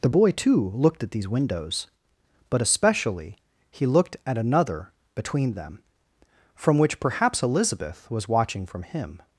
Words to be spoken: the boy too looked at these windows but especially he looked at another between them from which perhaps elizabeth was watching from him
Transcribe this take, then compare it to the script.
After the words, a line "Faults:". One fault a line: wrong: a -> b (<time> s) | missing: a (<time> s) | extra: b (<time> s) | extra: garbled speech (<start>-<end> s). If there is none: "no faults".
the boy too looked at these windows but especially he looked at another between them from which perhaps elizabeth was watching from him
Faults:
no faults